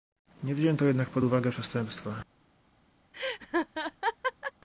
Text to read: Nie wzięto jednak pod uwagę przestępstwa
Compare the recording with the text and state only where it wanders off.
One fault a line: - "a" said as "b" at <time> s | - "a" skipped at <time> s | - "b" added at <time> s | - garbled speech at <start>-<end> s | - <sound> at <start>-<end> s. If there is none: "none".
- laugh at 3.1-4.5 s